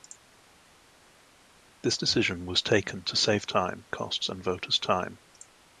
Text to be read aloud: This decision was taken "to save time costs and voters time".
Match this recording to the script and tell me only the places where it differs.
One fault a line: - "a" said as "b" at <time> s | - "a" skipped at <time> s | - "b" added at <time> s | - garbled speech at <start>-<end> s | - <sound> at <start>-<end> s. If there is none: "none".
none